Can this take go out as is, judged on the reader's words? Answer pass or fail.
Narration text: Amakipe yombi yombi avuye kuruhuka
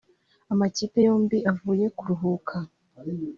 fail